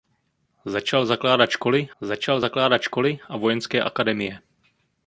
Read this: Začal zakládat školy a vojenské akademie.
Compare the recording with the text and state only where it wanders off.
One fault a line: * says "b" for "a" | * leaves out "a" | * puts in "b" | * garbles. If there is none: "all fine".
* puts in "začal zakládat školy"